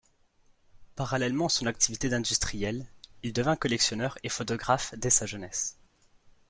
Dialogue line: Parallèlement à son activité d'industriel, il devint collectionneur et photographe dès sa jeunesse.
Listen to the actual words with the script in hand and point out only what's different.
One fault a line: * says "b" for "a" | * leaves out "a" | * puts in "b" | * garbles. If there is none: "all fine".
all fine